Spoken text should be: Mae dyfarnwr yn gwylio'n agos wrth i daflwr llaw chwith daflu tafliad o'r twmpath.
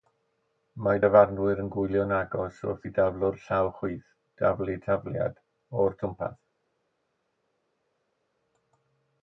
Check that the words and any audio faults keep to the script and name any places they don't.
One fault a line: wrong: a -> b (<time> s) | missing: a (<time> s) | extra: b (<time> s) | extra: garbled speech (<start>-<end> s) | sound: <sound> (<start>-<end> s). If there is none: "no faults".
no faults